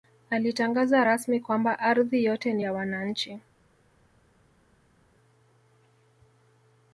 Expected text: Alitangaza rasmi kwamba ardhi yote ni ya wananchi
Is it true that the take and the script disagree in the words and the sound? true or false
false